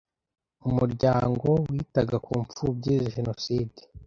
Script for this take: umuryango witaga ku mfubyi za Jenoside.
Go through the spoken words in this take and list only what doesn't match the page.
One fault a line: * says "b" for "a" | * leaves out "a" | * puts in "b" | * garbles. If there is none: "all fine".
* leaves out "za"